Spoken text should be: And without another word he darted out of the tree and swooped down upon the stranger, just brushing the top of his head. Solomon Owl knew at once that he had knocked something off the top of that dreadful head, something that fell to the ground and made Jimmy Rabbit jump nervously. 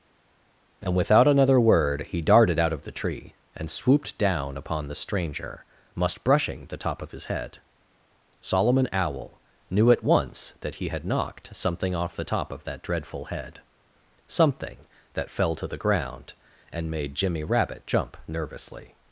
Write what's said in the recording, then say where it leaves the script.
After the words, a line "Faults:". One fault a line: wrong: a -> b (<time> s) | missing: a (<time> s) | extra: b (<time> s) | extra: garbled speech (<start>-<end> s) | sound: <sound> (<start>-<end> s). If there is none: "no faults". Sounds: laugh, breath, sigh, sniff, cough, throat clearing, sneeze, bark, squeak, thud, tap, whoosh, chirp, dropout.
And without another word he darted out of the tree and swooped down upon the stranger, must brushing the top of his head. Solomon Owl knew at once that he had knocked something off the top of that dreadful head, something that fell to the ground and made Jimmy Rabbit jump nervously.
Faults:
wrong: just -> must (5.9 s)